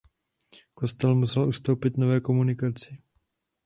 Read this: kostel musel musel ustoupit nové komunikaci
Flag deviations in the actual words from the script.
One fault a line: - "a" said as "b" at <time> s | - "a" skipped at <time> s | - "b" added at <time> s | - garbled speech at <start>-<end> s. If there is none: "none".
- "musel" skipped at 1.5 s